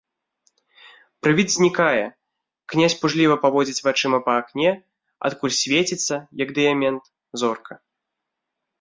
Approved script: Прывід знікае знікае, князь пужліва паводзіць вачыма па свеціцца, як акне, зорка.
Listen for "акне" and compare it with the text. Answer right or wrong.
wrong